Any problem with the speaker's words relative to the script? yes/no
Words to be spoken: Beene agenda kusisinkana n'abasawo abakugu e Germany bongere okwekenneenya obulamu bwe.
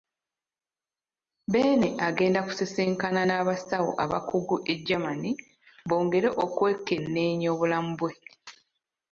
no